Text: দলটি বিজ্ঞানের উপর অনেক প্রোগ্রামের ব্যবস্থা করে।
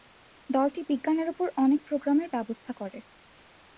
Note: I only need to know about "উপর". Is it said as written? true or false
true